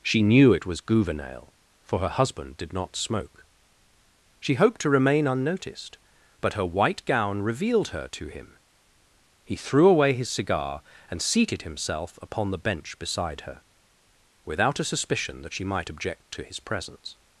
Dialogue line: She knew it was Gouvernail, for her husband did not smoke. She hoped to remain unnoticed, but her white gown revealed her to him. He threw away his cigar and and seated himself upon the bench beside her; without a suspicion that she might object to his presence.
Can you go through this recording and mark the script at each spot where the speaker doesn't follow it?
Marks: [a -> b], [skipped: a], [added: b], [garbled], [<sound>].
She knew it was Gouvernail, for her husband did not smoke. She hoped to remain unnoticed, but her white gown revealed her to him. He threw away his cigar and [skipped: and] seated himself upon the bench beside her; without a suspicion that she might object to his presence.